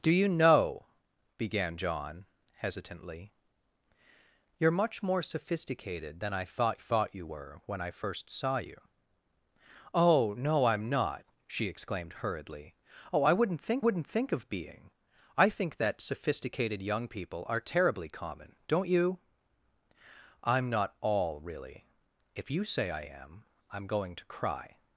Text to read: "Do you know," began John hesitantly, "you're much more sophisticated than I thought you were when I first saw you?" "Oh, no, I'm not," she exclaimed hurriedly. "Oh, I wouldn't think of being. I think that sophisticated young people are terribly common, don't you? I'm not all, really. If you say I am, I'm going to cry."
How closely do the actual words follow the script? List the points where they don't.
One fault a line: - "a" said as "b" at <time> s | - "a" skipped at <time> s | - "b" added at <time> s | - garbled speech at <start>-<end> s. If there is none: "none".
- "thought" added at 6.7 s
- "wouldn't think" added at 13.8 s